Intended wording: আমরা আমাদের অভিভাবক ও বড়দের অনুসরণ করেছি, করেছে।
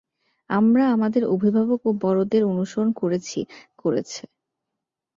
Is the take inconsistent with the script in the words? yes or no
no